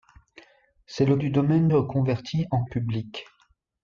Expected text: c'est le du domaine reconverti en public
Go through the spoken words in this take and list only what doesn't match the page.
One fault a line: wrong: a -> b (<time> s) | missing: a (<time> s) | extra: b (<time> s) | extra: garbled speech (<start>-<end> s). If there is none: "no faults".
no faults